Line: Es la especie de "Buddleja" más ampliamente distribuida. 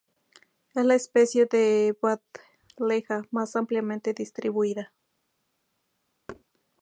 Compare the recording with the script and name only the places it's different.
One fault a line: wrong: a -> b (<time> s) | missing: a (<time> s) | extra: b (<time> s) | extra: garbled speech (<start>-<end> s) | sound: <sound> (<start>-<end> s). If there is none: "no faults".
sound: thud (6.3-6.4 s)